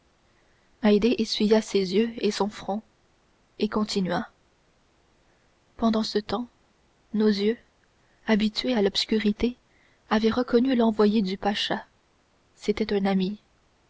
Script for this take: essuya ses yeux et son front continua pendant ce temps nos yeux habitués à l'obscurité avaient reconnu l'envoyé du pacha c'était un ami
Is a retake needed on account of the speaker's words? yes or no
yes